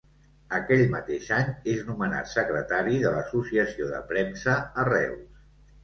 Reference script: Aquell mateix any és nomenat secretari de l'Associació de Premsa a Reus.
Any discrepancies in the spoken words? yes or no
no